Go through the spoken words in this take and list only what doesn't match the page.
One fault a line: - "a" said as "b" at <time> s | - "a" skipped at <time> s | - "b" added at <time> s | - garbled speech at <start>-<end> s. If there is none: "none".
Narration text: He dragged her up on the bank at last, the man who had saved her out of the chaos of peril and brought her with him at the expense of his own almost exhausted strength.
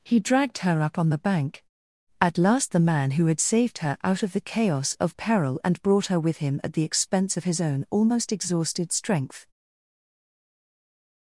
none